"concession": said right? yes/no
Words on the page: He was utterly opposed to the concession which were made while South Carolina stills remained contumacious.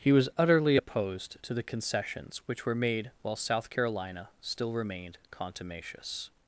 no